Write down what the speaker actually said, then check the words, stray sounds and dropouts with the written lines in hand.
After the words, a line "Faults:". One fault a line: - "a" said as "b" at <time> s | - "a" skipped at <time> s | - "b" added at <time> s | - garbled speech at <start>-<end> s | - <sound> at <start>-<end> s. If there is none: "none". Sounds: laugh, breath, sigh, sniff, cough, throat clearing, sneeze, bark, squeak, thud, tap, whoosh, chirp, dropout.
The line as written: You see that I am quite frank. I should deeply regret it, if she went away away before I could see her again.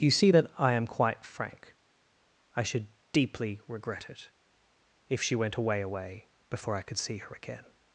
You see that I am quite frank. I should deeply regret it, if she went away away before I could see her again.
Faults:
none